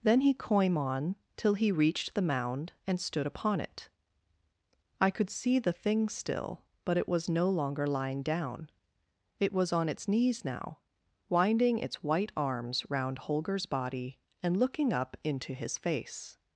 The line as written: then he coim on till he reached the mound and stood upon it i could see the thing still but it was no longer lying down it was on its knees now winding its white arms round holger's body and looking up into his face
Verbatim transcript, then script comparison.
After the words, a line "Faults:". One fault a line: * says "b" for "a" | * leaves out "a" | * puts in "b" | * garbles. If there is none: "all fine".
then he coim on till he reached the mound and stood upon it i could see the thing still but it was no longer lying down it was on its knees now winding its white arms round holger's body and looking up into his face
Faults:
all fine